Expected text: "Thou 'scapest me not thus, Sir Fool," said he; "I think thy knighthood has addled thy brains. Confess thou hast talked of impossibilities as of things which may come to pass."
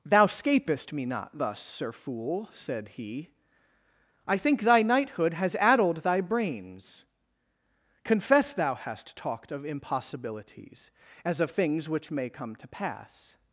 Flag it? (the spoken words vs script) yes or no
no